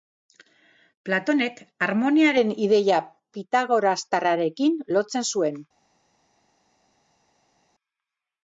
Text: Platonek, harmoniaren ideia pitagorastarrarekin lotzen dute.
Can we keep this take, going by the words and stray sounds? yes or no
no